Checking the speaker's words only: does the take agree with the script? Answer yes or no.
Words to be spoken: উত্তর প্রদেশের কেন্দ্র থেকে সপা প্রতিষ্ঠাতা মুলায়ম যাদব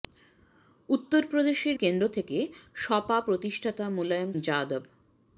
yes